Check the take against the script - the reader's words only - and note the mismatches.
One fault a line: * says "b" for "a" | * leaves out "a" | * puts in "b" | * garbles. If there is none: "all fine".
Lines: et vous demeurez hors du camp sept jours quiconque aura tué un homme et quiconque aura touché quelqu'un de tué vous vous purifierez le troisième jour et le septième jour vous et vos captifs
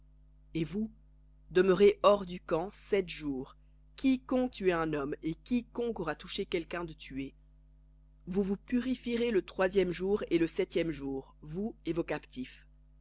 * leaves out "aura"